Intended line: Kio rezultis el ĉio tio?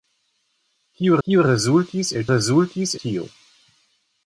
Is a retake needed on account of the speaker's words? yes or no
yes